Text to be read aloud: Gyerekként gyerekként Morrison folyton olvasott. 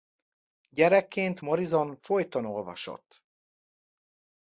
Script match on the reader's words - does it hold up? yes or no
no